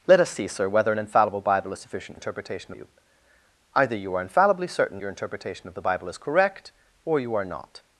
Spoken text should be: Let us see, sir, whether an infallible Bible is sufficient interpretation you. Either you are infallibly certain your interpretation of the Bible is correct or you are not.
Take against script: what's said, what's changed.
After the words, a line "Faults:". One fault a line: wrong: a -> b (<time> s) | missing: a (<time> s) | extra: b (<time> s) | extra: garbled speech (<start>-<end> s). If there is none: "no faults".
Let us see, sir, whether an infallible Bible is sufficient interpretation you. Either you are infallibly certain your interpretation of the Bible is correct or you are not.
Faults:
no faults